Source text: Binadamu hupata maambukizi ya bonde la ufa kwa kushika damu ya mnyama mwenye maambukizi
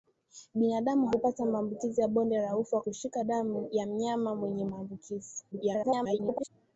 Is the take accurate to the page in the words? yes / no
no